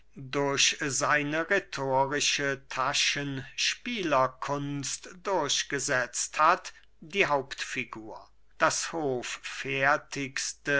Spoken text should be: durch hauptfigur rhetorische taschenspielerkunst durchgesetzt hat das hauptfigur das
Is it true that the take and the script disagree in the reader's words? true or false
true